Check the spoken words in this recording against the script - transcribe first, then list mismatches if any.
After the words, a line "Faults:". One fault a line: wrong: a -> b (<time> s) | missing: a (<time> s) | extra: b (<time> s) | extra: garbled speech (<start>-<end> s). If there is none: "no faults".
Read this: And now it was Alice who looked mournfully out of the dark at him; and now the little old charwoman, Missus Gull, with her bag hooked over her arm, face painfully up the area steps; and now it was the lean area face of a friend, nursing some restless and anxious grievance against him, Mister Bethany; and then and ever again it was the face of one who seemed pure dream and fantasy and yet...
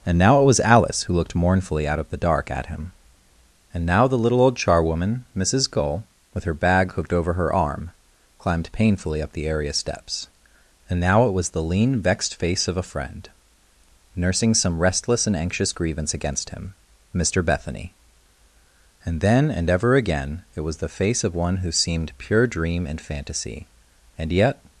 And now it was Alice who looked mournfully out of the dark at him; and now the little old charwoman, Missus Gull, with her bag hooked over her arm, climbed painfully up the area steps; and now it was the lean vexed face of a friend, nursing some restless and anxious grievance against him, Mister Bethany; and then and ever again it was the face of one who seemed pure dream and fantasy and yet...
Faults:
wrong: face -> climbed (8.4 s)
wrong: area -> vexed (12.0 s)